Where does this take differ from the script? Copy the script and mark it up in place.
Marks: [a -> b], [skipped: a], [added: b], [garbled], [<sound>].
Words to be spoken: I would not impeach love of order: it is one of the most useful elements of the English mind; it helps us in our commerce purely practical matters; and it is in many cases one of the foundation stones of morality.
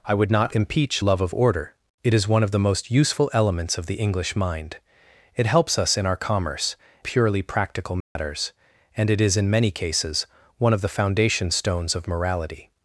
I would not impeach love of order: it is one of the most useful elements of the English mind; it helps us in our commerce purely practical matters; [dropout] and it is in many cases one of the foundation stones of morality.